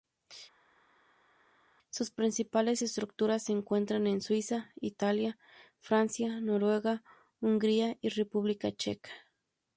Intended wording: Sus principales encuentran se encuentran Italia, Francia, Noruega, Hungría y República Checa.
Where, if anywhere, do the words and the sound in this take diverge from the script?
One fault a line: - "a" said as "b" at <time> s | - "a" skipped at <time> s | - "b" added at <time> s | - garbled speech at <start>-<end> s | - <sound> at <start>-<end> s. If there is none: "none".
- "encuentran" said as "estructuras" at 2.8 s
- "en Suiza" added at 4.1 s